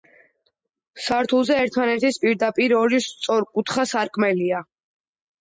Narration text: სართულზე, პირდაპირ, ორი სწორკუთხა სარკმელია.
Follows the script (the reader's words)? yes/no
no